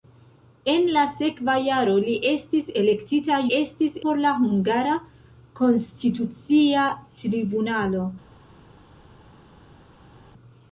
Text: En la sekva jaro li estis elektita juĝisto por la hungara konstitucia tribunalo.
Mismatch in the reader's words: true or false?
true